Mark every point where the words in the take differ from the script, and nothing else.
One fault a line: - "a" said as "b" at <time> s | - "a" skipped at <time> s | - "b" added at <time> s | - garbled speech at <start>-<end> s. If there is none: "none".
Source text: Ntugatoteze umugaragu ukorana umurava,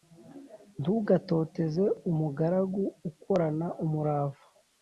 none